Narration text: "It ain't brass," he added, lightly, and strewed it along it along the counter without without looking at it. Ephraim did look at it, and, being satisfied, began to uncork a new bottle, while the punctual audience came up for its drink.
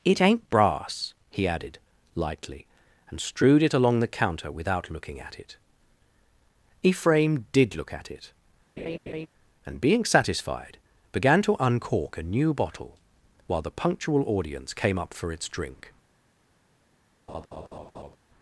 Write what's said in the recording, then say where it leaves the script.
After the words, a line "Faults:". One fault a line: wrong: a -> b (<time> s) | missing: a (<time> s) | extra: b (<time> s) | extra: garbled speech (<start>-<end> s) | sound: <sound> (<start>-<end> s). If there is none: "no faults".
"It ain't brass," he added, lightly, and strewed it along the counter without looking at it. Ephraim did look at it, and, being satisfied, began to uncork a new bottle, while the punctual audience came up for its drink.
Faults:
missing: it along (4.0 s)
missing: without (4.9 s)
sound: laugh (8.8-9.3 s)
sound: laugh (17.3-18.2 s)